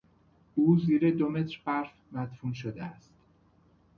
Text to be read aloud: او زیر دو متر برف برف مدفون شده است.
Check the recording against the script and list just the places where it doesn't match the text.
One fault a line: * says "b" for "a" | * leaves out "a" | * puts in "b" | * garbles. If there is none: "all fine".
* leaves out "برف"